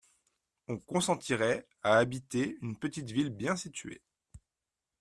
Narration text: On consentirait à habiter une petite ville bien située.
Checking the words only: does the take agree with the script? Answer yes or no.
yes